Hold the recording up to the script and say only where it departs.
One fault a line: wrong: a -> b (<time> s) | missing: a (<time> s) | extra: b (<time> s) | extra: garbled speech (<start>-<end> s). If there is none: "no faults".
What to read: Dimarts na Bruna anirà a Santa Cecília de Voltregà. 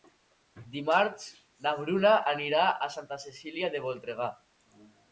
no faults